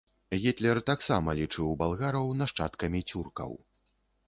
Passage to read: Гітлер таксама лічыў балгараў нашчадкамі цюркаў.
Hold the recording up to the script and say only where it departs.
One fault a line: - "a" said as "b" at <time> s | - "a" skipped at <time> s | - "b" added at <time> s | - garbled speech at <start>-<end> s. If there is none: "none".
none